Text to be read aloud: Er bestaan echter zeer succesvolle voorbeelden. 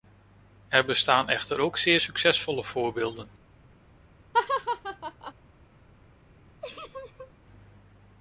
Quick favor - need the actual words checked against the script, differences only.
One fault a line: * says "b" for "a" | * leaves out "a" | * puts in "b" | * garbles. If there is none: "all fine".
* puts in "ook"